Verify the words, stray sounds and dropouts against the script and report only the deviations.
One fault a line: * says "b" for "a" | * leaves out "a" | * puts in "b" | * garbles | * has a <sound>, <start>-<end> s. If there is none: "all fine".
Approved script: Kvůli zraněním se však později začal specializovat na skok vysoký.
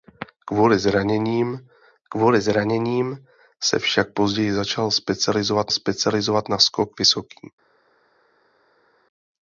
* puts in "kvůli zraněním"
* puts in "specializovat"